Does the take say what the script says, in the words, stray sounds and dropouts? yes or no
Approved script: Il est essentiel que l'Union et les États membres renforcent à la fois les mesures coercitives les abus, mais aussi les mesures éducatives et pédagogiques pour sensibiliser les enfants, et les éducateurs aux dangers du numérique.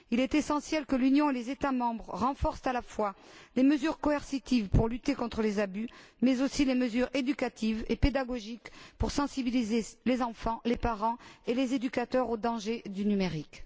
no